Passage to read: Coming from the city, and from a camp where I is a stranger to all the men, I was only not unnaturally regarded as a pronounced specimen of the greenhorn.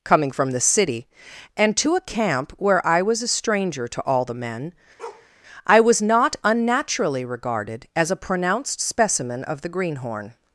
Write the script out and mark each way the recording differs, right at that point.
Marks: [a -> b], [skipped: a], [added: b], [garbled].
Coming from the city, and [from -> to] a camp where I [is -> was] a stranger to all the men, I was [skipped: only] not unnaturally regarded as a pronounced specimen of the greenhorn.